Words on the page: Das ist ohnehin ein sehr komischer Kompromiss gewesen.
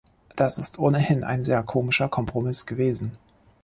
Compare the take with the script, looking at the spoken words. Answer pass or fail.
pass